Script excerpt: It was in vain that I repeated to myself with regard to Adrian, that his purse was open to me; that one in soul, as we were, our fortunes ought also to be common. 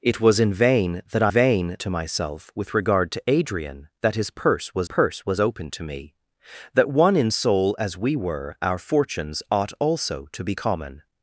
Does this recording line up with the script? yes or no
no